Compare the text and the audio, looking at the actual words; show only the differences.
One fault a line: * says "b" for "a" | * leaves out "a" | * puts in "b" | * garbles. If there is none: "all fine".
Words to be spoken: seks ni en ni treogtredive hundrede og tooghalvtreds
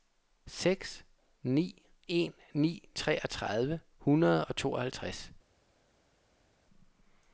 all fine